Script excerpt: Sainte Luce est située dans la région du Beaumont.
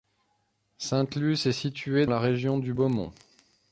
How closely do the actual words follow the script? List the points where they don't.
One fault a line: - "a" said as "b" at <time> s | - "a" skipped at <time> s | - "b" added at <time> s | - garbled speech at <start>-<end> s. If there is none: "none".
- "dans" skipped at 2.1 s